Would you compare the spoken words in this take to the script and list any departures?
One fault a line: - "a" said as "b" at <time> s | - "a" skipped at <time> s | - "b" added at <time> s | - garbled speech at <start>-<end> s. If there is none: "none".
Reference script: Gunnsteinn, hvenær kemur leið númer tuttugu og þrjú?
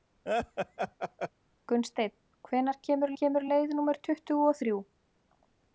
- "kemur" added at 3.2 s